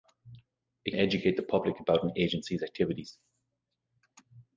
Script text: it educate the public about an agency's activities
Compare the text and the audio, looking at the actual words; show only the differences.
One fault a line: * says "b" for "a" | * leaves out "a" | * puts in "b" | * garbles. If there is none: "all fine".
all fine